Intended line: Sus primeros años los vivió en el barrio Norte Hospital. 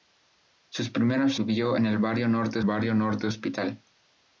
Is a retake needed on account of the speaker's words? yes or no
yes